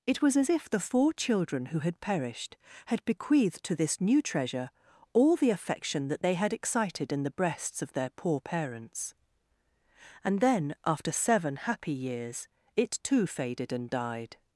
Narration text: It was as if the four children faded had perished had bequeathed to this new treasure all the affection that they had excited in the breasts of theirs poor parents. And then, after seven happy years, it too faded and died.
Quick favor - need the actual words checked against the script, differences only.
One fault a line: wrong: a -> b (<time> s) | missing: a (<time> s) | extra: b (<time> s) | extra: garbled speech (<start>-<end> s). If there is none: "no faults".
wrong: faded -> who (1.7 s)
wrong: theirs -> their (7.9 s)